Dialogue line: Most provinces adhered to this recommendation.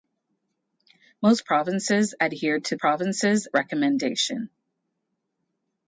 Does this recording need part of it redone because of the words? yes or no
yes